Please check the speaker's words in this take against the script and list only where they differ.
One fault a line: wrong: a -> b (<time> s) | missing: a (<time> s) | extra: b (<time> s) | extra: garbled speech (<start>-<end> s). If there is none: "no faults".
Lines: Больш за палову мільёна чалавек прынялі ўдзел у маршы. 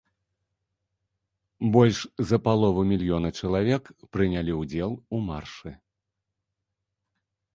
no faults